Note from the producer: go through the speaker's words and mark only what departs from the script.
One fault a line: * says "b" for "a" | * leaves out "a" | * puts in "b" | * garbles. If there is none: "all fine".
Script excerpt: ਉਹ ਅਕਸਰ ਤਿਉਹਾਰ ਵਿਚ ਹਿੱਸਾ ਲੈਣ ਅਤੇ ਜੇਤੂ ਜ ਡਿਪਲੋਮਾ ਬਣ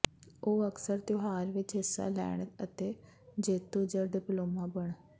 all fine